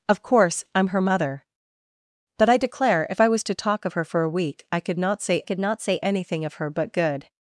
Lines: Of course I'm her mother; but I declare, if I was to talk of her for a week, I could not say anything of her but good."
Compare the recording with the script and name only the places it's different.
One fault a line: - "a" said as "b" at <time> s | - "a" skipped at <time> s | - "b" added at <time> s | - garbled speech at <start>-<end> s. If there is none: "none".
- "could not say" added at 5.4 s